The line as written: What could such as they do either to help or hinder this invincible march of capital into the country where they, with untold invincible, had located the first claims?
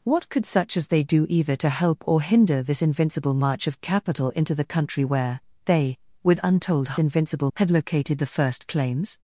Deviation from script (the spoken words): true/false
false